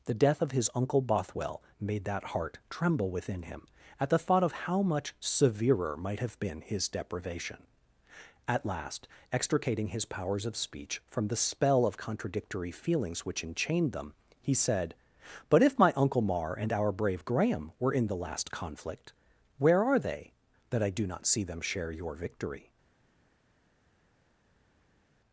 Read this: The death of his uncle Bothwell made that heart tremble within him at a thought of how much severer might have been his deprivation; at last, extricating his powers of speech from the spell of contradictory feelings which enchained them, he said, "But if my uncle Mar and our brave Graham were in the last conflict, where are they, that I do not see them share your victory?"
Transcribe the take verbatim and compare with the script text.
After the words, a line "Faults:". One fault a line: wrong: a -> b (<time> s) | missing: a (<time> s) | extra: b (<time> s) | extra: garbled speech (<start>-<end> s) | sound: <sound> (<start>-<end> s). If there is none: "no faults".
The death of his uncle Bothwell made that heart tremble within him at the thought of how much severer might have been his deprivation; at last, extricating his powers of speech from the spell of contradictory feelings which enchained them, he said, "But if my uncle Mar and our brave Graham were in the last conflict, where are they, that I do not see them share your victory?"
Faults:
wrong: a -> the (4.1 s)